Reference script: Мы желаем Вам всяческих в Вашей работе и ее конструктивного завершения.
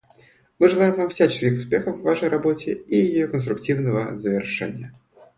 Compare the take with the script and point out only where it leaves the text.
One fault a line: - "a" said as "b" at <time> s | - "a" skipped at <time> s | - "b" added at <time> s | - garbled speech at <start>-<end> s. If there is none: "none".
- "успехов" added at 1.6 s